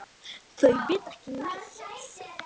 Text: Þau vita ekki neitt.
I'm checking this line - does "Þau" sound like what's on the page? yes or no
yes